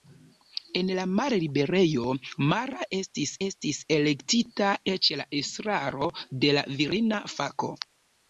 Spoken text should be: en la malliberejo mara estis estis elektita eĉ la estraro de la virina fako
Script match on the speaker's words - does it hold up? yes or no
yes